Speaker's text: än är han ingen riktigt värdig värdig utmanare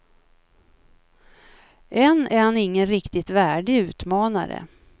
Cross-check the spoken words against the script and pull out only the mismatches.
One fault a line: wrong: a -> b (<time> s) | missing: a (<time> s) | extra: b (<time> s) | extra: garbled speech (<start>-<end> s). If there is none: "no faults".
missing: värdig (3.8 s)